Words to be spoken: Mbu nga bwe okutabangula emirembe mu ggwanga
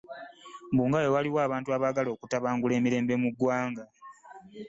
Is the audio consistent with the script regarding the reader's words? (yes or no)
no